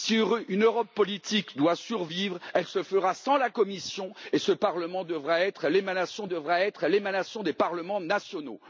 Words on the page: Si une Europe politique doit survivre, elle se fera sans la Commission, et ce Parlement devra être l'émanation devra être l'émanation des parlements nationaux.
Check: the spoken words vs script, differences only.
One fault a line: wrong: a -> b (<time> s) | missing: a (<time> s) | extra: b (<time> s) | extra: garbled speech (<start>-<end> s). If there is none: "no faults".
no faults